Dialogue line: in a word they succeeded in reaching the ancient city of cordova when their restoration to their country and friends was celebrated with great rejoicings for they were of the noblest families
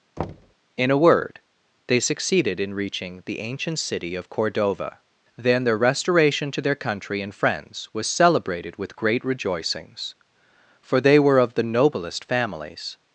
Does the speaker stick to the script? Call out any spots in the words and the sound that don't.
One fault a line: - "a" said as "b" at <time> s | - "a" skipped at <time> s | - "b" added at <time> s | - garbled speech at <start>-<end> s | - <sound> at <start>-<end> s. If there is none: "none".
- thud at 0.2-0.5 s
- "when" said as "then" at 5.4 s